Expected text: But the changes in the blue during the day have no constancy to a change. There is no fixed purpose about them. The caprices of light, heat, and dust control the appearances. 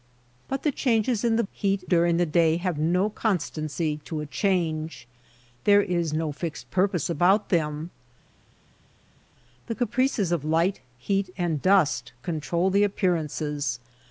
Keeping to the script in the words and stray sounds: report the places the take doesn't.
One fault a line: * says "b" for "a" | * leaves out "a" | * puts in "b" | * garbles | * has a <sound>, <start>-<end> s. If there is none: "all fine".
* says "heat" for "blue"